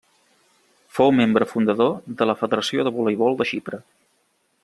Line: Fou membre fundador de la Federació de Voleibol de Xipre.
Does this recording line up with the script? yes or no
yes